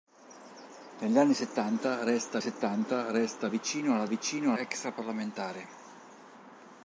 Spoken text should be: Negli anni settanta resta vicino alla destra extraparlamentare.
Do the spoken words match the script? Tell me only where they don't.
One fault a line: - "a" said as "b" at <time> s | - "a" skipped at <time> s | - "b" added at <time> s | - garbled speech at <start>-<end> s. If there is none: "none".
- "settanta resta" added at 2.4 s
- "destra" said as "vicino" at 4.0 s